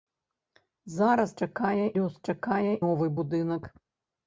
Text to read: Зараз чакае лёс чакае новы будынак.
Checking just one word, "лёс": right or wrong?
right